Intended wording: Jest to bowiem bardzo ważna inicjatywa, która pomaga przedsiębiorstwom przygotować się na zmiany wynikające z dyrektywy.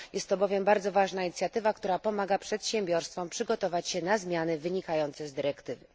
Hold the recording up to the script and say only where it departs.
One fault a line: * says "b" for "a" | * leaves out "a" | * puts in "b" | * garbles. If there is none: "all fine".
all fine